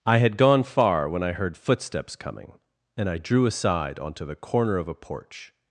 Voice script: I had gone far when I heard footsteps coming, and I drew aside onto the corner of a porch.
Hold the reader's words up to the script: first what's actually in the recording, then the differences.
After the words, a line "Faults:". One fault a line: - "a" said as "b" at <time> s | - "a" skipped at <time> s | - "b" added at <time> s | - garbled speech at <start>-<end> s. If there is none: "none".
I had gone far when I heard footsteps coming, and I drew aside onto the corner of a porch.
Faults:
none